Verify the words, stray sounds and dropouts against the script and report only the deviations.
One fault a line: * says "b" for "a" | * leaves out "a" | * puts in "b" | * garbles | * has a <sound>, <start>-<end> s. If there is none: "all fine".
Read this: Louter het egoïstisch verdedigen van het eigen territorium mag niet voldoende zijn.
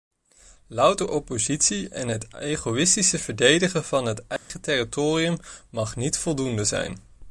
* puts in "oppositie en"
* has a dropout, 4.4-4.5 s